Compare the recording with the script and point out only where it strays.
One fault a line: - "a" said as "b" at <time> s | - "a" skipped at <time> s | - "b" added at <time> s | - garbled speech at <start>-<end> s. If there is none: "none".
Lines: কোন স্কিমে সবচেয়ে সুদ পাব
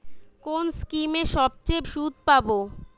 none